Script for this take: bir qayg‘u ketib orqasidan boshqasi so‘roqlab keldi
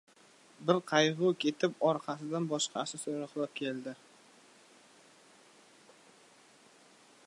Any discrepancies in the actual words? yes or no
no